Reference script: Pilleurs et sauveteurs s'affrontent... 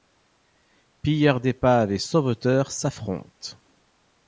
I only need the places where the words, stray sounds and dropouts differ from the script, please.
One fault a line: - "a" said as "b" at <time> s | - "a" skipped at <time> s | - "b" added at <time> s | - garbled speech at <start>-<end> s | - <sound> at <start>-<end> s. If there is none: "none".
- "d'épaves" added at 1.4 s